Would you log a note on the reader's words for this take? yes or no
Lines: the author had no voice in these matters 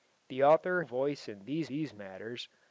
yes